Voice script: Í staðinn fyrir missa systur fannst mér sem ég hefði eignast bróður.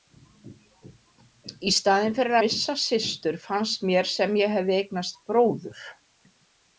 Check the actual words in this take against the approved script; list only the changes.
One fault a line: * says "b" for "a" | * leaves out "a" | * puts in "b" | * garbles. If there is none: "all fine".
all fine